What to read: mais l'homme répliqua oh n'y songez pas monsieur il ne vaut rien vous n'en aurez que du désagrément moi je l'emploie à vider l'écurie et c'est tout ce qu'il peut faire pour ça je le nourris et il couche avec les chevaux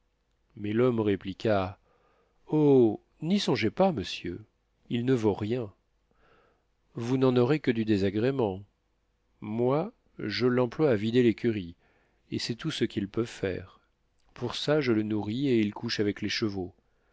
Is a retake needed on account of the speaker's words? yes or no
no